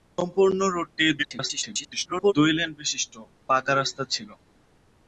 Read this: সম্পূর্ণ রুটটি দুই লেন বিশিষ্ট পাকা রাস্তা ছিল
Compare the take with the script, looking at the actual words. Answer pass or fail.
fail